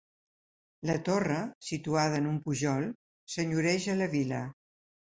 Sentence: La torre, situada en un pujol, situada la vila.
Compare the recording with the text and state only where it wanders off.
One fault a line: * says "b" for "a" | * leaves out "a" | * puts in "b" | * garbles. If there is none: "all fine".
* says "senyoreja" for "situada"